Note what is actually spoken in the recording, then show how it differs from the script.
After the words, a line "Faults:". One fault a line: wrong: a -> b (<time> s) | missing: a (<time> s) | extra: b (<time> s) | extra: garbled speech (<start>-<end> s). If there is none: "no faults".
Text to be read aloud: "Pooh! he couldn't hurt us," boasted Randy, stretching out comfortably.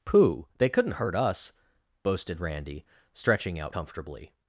"Pooh! they couldn't hurt us," boasted Randy, stretching out comfortably.
Faults:
wrong: he -> they (0.6 s)